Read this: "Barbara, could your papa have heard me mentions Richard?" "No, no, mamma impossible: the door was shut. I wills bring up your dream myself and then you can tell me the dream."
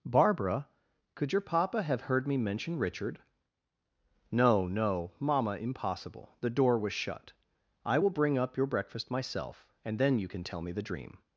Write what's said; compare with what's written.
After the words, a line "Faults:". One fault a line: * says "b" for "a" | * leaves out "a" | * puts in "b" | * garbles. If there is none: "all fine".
"Barbara, could your papa have heard me mention Richard?" "No, no, mamma impossible: the door was shut. I will bring up your breakfast myself and then you can tell me the dream."
Faults:
* says "mention" for "mentions"
* says "will" for "wills"
* says "breakfast" for "dream"